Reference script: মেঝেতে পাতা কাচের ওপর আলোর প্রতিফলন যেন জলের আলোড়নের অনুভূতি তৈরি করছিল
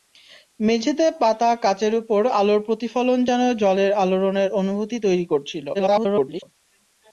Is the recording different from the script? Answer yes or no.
yes